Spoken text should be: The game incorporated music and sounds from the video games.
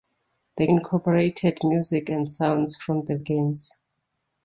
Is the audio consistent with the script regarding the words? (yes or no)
no